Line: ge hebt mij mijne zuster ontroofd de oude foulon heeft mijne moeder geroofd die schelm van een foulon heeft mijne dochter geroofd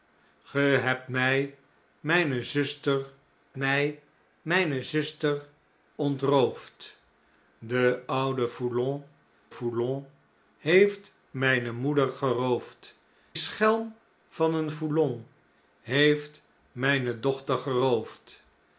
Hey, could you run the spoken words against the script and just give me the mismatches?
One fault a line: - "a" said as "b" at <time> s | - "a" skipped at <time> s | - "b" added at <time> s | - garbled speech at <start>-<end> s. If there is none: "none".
- "mij mijne zuster" added at 3.5 s
- "foulon" added at 9.5 s
- "die" skipped at 13.0 s